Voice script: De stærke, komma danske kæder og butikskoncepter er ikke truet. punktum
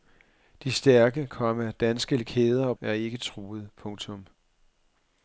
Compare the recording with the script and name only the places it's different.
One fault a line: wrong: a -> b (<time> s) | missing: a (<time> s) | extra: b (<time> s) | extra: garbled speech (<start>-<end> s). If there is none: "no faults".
missing: butikskoncepter (2.8 s)